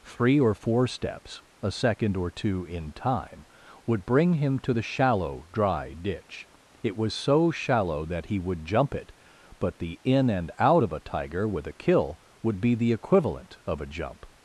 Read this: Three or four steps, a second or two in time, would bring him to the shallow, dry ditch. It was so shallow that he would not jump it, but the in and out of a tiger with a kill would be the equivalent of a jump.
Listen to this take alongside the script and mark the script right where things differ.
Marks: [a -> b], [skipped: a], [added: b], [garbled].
Three or four steps, a second or two in time, would bring him to the shallow, dry ditch. It was so shallow that he would [skipped: not] jump it, but the in and out of a tiger with a kill would be the equivalent of a jump.